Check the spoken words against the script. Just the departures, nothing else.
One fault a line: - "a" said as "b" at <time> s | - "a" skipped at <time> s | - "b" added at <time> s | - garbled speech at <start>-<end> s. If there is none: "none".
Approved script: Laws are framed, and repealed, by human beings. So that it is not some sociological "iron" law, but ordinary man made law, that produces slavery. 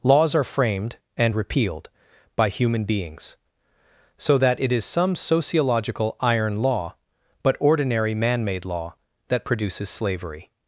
- "not" skipped at 4.8 s